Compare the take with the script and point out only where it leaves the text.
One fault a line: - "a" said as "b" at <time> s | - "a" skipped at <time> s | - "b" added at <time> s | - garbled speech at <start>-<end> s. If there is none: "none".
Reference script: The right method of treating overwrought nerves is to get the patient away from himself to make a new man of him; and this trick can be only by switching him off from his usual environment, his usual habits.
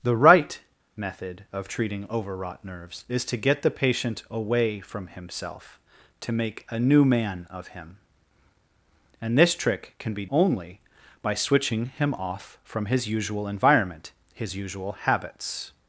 none